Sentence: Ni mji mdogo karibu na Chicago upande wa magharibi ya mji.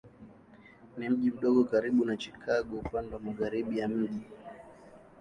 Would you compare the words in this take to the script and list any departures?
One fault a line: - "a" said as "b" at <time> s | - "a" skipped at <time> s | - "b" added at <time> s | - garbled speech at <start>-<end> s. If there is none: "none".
none